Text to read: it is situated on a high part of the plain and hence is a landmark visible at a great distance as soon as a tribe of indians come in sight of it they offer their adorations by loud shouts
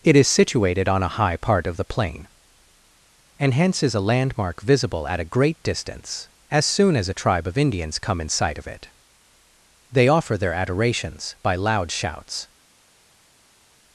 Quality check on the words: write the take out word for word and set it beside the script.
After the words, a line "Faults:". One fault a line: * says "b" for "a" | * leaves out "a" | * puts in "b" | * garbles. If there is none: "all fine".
it is situated on a high part of the plain and hence is a landmark visible at a great distance as soon as a tribe of indians come in sight of it they offer their adorations by loud shouts
Faults:
all fine